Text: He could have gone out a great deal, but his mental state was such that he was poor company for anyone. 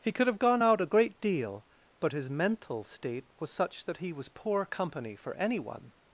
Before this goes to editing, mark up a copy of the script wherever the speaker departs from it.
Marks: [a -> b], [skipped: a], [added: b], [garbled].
He could have gone out a great deal, but his mental state was such that he was poor company for anyone.